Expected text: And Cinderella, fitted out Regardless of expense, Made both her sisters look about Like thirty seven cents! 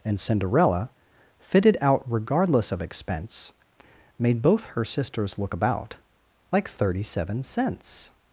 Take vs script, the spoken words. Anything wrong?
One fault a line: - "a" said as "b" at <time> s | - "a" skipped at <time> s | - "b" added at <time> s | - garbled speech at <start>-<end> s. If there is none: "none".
none